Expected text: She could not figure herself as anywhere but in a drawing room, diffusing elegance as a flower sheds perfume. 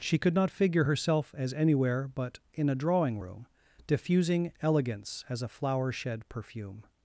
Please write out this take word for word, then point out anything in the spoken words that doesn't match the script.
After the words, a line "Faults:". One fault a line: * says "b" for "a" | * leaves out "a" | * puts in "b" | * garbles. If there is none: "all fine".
She could not figure herself as anywhere but in a drawing room, diffusing elegance as a flower shed perfume.
Faults:
* says "shed" for "sheds"